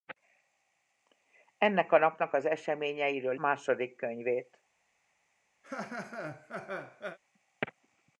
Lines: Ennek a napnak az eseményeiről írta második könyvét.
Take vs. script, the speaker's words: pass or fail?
fail